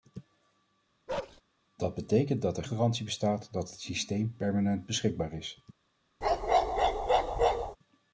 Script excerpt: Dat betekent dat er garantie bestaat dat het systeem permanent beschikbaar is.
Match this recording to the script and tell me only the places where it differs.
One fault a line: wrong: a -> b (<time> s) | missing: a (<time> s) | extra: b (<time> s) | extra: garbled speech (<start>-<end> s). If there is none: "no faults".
no faults